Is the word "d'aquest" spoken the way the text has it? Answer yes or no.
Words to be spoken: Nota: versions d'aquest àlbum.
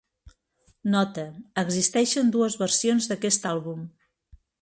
yes